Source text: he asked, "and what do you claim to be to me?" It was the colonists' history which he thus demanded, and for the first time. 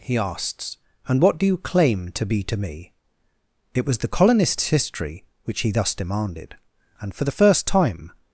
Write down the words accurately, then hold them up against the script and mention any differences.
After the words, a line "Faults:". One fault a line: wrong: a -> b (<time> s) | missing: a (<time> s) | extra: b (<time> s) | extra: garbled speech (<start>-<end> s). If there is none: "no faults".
he asks, "and what do you claim to be to me?" It was the colonists' history which he thus demanded, and for the first time.
Faults:
wrong: asked -> asks (0.2 s)